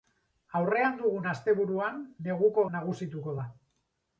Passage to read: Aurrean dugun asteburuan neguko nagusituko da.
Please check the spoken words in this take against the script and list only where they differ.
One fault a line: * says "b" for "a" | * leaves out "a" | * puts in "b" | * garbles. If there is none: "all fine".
all fine